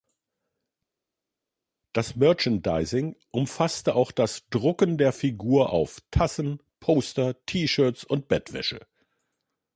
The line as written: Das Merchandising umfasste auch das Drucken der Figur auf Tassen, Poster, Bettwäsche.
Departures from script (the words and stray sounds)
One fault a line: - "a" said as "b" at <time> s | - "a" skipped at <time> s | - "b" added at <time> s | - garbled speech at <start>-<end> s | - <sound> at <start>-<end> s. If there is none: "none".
- "T Shirts und" added at 7.5 s